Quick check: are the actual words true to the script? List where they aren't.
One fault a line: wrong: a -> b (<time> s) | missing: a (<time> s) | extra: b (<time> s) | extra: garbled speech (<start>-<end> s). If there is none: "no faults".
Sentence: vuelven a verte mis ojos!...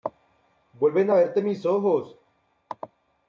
no faults